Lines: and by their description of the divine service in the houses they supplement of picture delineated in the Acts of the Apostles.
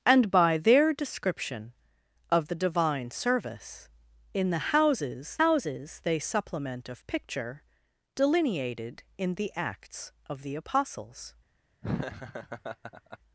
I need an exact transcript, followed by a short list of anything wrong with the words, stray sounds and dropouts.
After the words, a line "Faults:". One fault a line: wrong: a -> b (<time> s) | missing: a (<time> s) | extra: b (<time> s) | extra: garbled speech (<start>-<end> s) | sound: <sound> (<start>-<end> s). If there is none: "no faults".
and by their description of the divine service in the houses houses they supplement of picture delineated in the Acts of the Apostles.
Faults:
extra: houses (5.4 s)
sound: laugh (11.8-13.2 s)